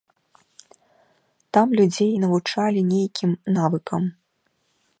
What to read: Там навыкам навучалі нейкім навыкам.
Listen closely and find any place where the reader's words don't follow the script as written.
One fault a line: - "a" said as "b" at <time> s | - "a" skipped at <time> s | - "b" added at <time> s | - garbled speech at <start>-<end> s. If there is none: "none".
- "навыкам" said as "людзей" at 1.8 s